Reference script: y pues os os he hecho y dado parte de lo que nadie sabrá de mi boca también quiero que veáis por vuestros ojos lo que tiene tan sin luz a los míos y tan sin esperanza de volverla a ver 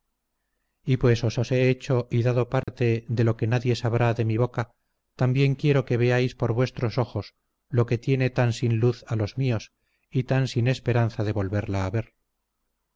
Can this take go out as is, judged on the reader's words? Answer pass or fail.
pass